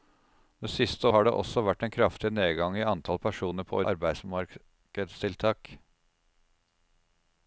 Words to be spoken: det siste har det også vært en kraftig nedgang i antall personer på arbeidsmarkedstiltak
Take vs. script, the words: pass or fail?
pass